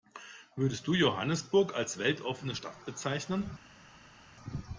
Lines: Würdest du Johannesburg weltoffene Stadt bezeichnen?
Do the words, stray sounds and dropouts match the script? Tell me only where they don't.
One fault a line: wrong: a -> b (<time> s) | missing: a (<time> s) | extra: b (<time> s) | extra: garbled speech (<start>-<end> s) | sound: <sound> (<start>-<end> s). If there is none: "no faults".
extra: als (1.8 s)